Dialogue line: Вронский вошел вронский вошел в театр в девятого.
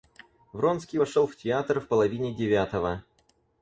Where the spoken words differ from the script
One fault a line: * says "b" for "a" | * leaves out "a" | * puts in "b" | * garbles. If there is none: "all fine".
* leaves out "вронский вошел"
* puts in "половине"